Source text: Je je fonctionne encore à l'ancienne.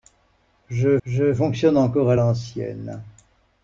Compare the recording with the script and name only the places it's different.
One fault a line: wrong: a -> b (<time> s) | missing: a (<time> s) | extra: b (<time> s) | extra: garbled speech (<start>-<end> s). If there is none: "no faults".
no faults